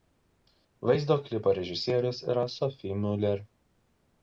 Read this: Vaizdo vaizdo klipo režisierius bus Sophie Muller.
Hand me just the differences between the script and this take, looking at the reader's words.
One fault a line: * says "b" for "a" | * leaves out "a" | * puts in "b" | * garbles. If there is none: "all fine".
* leaves out "vaizdo"
* says "yra" for "bus"